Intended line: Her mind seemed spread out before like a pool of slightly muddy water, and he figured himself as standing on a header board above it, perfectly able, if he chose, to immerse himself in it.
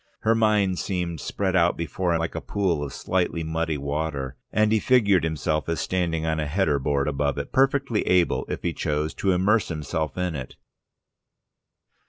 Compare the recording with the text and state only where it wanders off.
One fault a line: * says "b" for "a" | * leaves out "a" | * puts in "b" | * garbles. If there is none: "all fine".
all fine